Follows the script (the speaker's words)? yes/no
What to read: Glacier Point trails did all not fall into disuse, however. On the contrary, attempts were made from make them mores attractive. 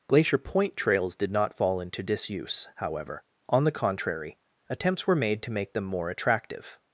no